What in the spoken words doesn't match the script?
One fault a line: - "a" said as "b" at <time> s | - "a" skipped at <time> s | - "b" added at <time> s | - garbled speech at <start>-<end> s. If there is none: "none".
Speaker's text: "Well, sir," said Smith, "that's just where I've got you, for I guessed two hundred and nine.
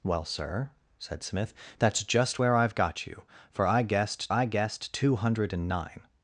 - "I guessed" added at 4.3 s